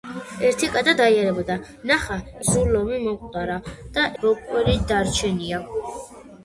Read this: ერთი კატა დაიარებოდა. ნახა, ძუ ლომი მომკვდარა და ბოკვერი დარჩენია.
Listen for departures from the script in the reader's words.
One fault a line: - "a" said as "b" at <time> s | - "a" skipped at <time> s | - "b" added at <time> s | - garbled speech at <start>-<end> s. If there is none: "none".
none